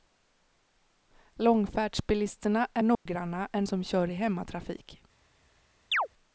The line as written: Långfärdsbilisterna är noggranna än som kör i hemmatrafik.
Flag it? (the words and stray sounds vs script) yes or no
yes